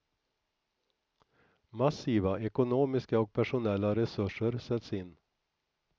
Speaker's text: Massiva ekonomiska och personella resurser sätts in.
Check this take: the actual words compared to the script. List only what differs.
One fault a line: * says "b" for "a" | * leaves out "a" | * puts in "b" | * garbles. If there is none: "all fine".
all fine